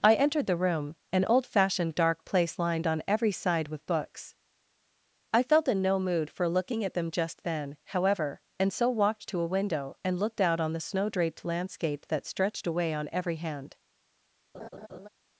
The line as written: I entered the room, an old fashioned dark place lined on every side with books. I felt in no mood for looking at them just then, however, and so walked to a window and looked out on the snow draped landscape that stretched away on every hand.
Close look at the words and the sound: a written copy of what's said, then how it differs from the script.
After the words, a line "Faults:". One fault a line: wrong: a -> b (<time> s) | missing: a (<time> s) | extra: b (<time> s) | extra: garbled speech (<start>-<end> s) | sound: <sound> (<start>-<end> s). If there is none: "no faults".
I entered the room, an old fashioned dark place lined on every side with books. I felt in no mood for looking at them just then, however, and so walked to a window and looked out on the snow draped landscape that stretched away on every hand.
Faults:
sound: laugh (14.5-15.1 s)